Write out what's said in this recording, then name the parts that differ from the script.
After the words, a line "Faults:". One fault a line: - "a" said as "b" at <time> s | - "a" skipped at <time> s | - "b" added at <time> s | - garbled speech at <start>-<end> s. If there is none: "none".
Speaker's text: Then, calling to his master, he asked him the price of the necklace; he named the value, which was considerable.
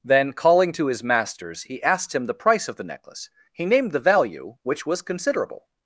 Then, calling to his masters, he asked him the price of the necklace; he named the value, which was considerable.
Faults:
- "master" said as "masters" at 1.0 s